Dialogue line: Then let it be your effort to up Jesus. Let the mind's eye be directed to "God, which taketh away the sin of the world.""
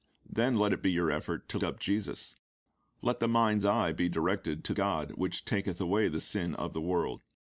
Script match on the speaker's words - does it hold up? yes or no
yes